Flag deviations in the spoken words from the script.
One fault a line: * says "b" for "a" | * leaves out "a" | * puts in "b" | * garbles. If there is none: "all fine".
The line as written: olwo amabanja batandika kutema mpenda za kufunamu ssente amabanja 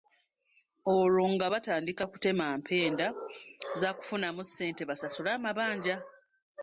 * says "nga" for "amabanja"
* puts in "basasule"